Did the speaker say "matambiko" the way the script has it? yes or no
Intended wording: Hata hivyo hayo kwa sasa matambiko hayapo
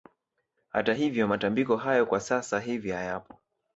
no